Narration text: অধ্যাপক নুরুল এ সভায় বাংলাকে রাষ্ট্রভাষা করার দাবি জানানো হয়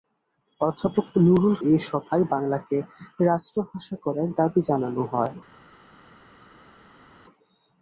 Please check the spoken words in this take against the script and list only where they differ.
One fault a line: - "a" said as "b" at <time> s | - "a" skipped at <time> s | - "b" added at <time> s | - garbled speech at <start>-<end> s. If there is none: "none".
none